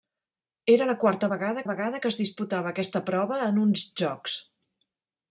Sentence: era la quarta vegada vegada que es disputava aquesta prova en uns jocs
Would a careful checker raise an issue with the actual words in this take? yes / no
no